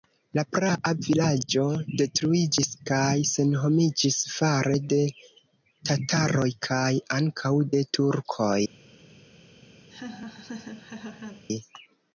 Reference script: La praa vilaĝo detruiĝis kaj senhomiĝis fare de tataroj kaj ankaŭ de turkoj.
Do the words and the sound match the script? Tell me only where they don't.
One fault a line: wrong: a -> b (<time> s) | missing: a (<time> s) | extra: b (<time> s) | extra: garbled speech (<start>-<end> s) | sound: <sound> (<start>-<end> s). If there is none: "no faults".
sound: laugh (9.9-11.4 s)